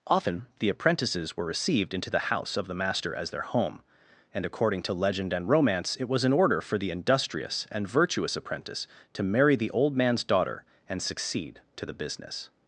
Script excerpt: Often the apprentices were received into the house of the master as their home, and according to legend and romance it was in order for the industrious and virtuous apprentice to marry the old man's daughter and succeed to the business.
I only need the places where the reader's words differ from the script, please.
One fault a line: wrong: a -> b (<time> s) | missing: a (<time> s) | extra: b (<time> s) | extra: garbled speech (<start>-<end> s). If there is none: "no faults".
no faults